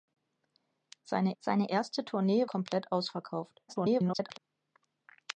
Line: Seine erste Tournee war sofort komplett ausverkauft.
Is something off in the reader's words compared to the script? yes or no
yes